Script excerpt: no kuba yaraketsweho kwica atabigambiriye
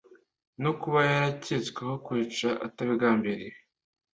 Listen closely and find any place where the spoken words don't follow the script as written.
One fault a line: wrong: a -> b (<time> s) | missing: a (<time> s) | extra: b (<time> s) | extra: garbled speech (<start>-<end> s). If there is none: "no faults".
no faults